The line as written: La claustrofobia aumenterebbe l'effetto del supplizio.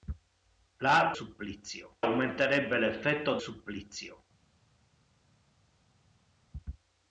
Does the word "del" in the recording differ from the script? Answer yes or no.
yes